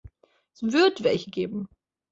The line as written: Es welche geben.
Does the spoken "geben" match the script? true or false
true